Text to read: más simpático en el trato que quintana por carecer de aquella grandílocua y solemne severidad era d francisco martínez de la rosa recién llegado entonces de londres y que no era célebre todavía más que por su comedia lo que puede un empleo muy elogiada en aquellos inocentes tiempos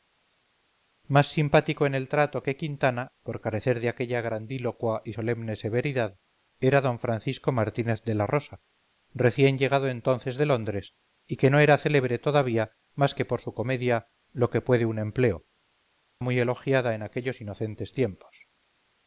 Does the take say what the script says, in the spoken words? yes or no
yes